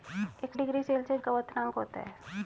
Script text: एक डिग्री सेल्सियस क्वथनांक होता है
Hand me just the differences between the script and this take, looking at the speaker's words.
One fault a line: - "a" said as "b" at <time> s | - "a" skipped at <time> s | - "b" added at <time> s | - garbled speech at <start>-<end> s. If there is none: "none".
none